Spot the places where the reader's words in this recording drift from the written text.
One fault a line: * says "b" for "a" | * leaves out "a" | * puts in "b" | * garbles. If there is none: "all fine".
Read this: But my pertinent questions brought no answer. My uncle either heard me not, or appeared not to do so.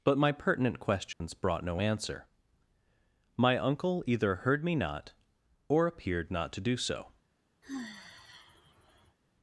all fine